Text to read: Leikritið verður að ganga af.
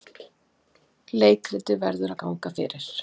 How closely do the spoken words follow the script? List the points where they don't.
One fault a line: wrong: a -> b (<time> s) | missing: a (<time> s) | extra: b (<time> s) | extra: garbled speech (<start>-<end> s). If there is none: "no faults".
wrong: af -> fyrir (2.6 s)